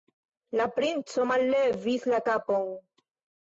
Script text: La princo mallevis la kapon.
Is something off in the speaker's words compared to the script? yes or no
no